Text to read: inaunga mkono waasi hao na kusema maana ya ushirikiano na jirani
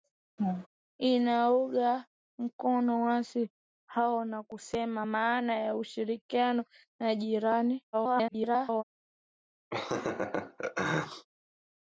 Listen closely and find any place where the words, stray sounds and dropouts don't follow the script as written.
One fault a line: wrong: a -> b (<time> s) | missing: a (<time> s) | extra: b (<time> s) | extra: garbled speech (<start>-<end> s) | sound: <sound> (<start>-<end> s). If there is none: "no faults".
sound: laugh (0.4-0.7 s)
extra: garbled speech (7.9-8.8 s)
sound: laugh (9.7-11.3 s)